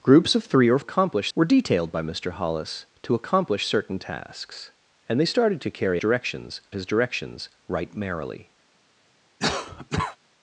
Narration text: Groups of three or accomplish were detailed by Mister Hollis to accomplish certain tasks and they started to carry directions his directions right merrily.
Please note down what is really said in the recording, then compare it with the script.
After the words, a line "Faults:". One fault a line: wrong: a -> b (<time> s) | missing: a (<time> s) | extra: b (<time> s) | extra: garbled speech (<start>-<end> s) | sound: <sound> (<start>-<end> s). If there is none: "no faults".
Groups of three or accomplish were detailed by Mister Hollis to accomplish certain tasks and they started to carry directions his directions right merrily.
Faults:
sound: cough (9.4-10.2 s)